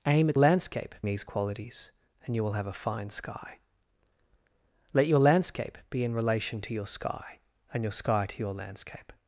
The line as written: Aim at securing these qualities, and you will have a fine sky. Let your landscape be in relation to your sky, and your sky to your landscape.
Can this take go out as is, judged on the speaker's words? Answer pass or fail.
fail